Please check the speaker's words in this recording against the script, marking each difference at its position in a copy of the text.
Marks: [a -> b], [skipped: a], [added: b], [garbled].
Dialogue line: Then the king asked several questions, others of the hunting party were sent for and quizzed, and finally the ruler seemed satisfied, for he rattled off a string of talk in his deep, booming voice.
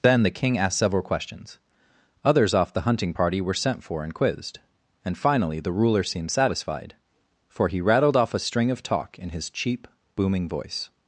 Then the king asked several questions, others [of -> off] the hunting party were sent for and quizzed, and finally the ruler seemed satisfied, for he rattled off a string of talk in his [deep, -> cheap] booming voice.